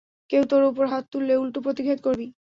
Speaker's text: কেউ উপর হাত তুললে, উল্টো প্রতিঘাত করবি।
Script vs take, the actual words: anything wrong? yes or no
yes